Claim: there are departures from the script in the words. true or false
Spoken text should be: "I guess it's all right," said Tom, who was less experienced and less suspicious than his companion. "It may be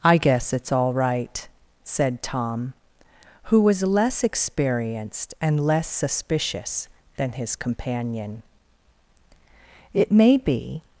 false